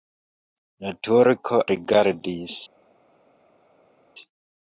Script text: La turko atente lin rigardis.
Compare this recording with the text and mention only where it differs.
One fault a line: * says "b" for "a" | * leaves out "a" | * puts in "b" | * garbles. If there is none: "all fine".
* leaves out "atente lin"